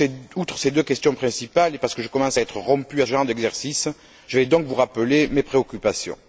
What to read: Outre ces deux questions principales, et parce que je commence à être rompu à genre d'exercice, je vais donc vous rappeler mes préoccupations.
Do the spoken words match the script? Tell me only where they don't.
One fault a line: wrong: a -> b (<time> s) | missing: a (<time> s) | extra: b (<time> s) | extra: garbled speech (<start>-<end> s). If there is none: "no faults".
no faults